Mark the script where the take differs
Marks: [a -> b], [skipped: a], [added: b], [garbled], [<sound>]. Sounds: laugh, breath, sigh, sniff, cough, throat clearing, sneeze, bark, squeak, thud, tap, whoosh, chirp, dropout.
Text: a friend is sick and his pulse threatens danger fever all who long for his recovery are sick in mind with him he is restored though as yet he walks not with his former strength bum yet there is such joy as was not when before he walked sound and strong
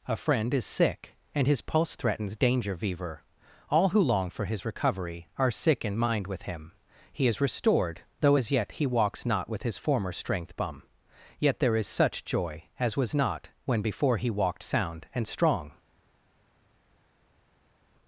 a friend is sick and his pulse threatens danger fever all who long for his recovery are sick in mind with him he is restored though as yet he walks not with his former strength bum yet there is such joy as was not when before he walked sound and strong